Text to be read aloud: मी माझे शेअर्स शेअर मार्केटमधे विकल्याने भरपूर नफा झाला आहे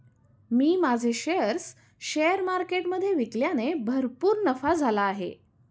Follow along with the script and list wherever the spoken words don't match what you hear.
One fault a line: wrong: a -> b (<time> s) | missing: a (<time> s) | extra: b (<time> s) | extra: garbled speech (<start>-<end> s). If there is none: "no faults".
no faults